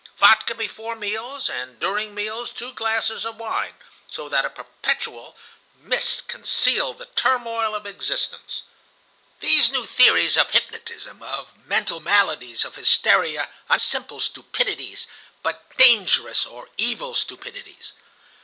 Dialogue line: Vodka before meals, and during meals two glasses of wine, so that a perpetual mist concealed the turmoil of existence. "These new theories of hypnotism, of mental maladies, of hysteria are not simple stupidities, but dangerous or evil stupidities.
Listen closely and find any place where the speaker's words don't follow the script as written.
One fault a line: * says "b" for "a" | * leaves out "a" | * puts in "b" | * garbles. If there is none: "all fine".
* leaves out "not"